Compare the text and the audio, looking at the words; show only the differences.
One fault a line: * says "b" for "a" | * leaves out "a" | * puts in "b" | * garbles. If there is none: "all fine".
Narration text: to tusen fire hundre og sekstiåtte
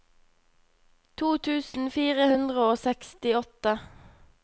all fine